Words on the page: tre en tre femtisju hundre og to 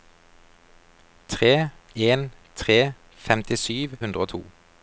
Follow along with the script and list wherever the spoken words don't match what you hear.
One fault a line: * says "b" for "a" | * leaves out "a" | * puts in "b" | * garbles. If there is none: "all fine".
all fine